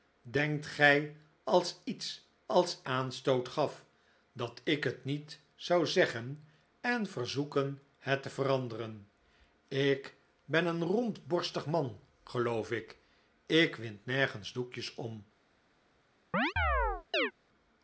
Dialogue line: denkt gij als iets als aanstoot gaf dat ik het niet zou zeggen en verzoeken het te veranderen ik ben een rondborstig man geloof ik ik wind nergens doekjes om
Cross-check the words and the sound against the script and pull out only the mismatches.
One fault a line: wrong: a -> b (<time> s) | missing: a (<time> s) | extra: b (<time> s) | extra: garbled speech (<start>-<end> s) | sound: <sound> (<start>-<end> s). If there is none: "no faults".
sound: chirp (16.3-17.3 s)